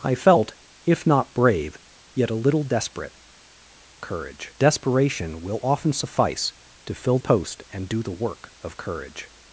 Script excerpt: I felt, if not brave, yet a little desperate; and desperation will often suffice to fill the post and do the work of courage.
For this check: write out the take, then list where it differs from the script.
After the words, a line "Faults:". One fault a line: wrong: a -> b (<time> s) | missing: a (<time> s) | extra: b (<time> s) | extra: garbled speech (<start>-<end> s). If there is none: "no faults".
I felt, if not brave, yet a little desperate; courage desperation will often suffice to fill post and do the work of courage.
Faults:
wrong: and -> courage (4.0 s)
missing: the (7.2 s)